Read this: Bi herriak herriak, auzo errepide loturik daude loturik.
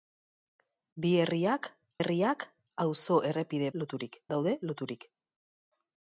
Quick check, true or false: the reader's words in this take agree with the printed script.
true